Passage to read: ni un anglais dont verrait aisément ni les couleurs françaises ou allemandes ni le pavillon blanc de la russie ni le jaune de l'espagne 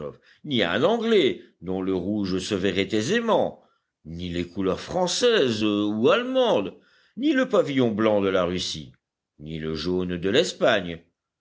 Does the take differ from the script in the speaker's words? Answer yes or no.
yes